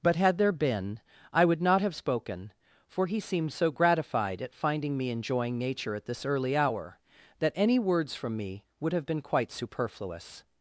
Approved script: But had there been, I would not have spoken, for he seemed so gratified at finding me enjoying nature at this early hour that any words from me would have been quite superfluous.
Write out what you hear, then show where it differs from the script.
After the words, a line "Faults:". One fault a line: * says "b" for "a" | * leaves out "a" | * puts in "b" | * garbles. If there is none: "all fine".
But had there been, I would not have spoken, for he seemed so gratified at finding me enjoying nature at this early hour that any words from me would have been quite superfluous.
Faults:
all fine